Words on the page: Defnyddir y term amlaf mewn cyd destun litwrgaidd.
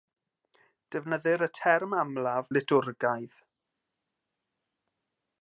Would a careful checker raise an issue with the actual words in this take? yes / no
yes